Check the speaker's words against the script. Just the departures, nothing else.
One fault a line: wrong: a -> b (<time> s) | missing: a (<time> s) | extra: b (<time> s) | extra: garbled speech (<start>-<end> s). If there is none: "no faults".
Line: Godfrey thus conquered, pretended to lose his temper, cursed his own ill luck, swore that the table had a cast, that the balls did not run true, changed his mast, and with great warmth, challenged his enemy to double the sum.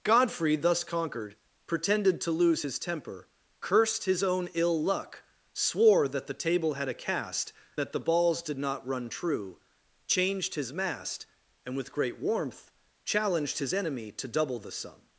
no faults